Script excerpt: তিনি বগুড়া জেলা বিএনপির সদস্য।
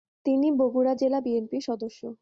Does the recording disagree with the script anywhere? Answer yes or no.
no